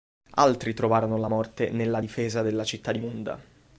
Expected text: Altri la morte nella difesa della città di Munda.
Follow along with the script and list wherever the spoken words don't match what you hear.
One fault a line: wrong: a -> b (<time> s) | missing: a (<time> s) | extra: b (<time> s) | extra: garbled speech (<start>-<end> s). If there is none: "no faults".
extra: trovarono (0.7 s)